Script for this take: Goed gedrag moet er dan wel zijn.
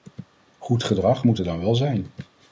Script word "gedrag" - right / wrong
right